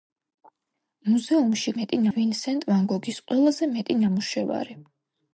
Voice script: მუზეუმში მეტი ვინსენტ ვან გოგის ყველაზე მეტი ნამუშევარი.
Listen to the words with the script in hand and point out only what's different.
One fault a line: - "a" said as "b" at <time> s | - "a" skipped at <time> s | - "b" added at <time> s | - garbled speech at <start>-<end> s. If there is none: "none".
none